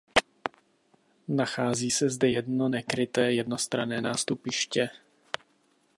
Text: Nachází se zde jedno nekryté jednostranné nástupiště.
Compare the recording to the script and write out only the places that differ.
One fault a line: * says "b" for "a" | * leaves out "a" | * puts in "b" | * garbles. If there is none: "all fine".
all fine